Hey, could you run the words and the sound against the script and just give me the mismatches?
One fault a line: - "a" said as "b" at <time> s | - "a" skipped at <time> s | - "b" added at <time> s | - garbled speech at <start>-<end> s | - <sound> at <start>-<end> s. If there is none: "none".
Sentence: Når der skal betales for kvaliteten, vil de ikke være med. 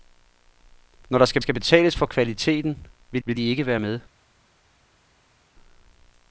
- "skal" added at 1.4 s
- "vil" added at 3.2 s